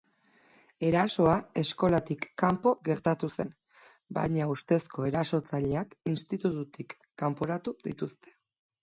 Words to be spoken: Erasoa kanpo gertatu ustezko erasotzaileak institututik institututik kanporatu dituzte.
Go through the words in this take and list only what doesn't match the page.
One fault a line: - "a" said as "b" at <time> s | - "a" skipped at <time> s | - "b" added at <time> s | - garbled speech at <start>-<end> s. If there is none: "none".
- "eskolatik" added at 1.6 s
- "zen baina" added at 3.4 s
- "institututik" skipped at 7.0 s